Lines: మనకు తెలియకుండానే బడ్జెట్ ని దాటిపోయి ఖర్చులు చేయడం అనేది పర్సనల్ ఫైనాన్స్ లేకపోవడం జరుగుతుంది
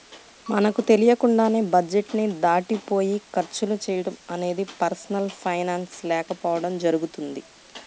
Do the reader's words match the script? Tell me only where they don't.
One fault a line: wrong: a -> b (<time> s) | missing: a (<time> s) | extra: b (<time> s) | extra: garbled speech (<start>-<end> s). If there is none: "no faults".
no faults